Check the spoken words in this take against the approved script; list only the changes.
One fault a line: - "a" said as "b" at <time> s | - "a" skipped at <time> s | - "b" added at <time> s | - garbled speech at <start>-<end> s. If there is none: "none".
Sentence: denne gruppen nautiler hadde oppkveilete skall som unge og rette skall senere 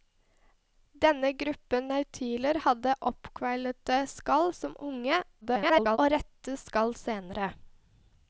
- garbled speech at 5.4-6.0 s